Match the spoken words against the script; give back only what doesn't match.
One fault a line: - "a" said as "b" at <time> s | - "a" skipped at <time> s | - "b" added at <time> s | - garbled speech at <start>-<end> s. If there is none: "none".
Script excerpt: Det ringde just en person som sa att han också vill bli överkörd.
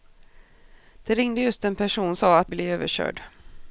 - "som" skipped at 2.2 s
- "han också vill" skipped at 2.5 s